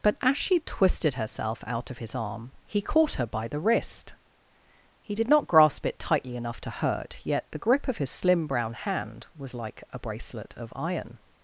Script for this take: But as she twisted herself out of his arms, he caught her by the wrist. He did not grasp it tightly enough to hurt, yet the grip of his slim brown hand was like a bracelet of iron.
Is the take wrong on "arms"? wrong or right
wrong